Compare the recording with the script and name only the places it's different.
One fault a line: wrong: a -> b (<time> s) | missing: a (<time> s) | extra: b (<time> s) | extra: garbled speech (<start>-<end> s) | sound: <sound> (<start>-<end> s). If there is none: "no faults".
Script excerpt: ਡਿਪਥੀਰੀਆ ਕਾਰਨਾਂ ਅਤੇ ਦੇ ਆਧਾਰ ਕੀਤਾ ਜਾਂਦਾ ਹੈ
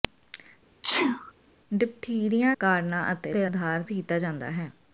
sound: sneeze (0.8-1.3 s)